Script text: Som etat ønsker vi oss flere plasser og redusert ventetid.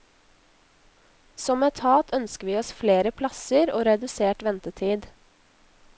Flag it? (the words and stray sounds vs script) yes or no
no